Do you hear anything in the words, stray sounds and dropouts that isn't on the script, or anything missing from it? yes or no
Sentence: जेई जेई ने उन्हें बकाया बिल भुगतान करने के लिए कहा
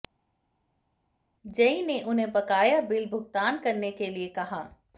yes